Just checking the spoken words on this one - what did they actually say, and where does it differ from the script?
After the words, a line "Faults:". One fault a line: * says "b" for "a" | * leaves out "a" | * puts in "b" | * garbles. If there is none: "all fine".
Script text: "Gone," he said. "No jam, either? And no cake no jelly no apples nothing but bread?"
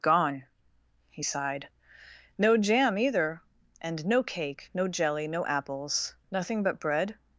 "Gone," he sighed. "No jam, either? And no cake no jelly no apples nothing but bread?"
Faults:
* says "sighed" for "said"